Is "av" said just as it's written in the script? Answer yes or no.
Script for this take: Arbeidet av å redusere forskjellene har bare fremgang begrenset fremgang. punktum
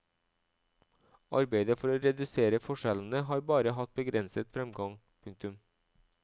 no